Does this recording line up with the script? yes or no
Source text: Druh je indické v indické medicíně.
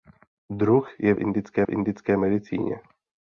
yes